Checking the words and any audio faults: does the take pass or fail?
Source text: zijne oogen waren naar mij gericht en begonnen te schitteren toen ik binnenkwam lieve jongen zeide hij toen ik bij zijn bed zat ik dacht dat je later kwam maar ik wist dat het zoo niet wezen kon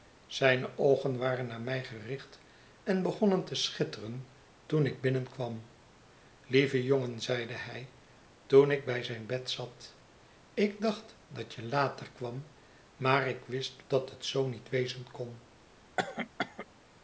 fail